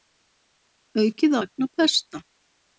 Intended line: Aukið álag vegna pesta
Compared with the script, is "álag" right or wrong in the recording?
wrong